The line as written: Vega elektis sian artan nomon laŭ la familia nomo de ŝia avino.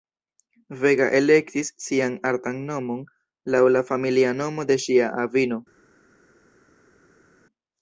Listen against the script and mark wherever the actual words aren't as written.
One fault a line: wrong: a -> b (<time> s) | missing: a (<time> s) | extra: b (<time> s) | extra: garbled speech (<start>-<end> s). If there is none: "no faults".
no faults